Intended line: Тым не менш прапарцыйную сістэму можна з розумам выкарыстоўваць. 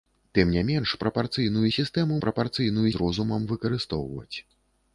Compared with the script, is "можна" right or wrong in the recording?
wrong